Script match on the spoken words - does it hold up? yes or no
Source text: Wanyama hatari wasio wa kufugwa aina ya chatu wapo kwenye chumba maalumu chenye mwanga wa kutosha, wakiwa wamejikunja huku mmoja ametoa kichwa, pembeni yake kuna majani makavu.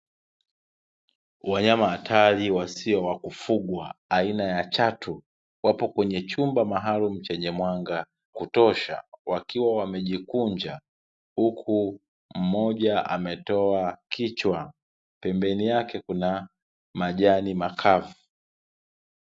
no